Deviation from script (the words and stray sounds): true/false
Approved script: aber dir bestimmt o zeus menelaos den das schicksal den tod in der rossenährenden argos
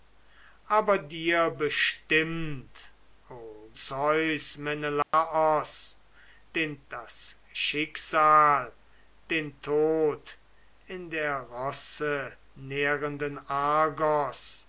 true